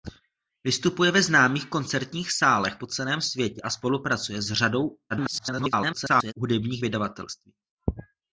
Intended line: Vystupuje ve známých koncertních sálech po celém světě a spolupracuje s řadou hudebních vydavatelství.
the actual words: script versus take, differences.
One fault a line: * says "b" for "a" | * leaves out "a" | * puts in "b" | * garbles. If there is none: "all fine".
* garbles